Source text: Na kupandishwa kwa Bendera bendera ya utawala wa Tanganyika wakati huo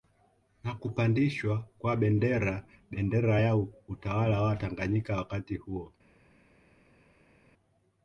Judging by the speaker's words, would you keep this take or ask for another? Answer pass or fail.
pass